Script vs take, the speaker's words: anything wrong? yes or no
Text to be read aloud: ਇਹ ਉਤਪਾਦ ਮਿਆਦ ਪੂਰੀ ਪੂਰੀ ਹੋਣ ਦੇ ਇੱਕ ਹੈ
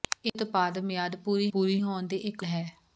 no